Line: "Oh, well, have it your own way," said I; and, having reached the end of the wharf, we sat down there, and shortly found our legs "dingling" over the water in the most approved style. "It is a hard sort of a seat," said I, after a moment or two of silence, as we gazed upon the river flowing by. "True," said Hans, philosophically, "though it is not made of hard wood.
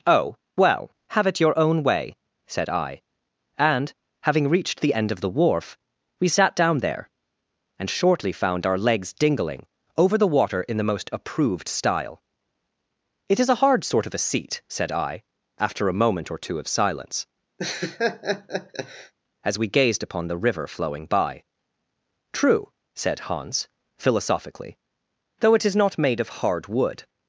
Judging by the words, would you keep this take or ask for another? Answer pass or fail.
pass